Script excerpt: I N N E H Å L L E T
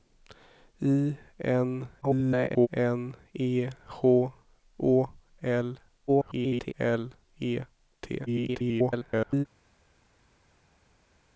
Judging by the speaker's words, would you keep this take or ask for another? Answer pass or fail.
fail